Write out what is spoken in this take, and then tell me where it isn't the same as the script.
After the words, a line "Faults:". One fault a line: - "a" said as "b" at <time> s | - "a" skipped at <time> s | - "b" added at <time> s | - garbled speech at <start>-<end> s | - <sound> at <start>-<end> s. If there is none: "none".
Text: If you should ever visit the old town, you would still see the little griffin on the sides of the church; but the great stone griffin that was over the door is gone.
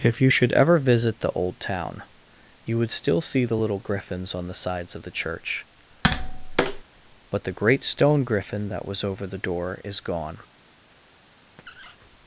If you should ever visit the old town, you would still see the little griffins on the sides of the church; but the great stone griffin that was over the door is gone.
Faults:
- "griffin" said as "griffins" at 3.8 s
- tap at 6.0-6.8 s
- squeak at 11.6-12.0 s